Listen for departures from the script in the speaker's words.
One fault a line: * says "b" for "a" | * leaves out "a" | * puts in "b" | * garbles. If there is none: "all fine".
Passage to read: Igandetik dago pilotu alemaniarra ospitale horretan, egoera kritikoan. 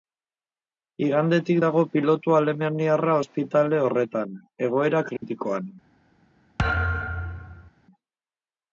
all fine